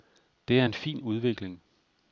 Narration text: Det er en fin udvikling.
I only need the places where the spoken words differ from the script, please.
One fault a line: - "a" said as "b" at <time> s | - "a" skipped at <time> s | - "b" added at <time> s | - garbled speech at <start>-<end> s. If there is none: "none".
none